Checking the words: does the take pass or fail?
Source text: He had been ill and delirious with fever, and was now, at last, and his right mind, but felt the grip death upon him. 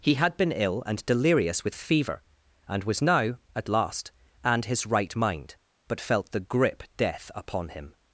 pass